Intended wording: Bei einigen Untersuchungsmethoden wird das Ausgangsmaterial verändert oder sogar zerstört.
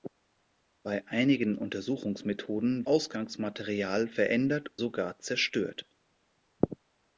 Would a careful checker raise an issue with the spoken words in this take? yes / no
yes